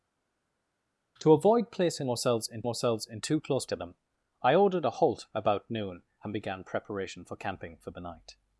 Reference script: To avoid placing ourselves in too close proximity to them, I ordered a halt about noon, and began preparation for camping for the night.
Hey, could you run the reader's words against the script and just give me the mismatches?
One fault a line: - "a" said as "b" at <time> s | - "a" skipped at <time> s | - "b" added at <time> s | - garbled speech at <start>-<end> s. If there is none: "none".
- "ourselves in" added at 2.7 s
- "proximity" skipped at 3.7 s